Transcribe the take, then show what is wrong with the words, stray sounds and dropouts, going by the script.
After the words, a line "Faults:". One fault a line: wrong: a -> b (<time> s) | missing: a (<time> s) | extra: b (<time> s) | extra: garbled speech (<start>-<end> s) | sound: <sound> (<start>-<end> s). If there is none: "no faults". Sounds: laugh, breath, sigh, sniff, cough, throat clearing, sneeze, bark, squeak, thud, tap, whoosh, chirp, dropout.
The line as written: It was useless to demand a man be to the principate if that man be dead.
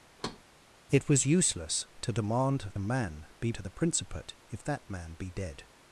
It was useless to demand a man be to the principate if that man be dead.
Faults:
sound: thud (0.2-0.4 s)